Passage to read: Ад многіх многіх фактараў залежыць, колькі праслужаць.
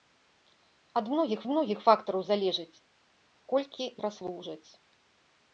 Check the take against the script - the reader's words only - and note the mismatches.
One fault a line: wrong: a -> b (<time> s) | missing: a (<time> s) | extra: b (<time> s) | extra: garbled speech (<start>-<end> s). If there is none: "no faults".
no faults